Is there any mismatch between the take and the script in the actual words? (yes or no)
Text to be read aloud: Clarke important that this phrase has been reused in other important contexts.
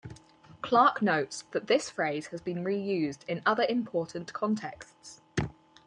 yes